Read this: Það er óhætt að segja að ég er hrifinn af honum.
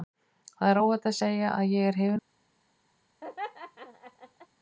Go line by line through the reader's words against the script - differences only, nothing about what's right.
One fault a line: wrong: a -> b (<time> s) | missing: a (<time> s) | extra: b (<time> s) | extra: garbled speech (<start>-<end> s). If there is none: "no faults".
no faults